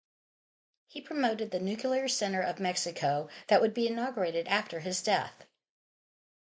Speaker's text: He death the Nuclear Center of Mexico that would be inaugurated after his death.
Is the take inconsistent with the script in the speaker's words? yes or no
yes